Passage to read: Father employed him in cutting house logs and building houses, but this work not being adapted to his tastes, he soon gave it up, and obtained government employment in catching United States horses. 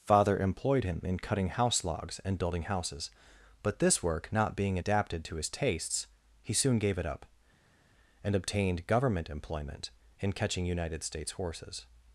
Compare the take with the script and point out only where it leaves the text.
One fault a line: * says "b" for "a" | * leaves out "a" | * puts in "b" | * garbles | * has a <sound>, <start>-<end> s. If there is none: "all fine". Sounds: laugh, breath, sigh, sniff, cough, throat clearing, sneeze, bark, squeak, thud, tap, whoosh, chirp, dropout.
all fine